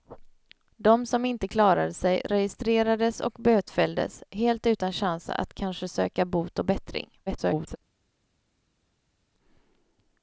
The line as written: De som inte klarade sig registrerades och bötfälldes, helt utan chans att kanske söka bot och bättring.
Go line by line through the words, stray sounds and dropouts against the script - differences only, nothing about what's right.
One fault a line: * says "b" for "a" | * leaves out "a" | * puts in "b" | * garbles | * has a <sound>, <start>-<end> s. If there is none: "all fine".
* garbles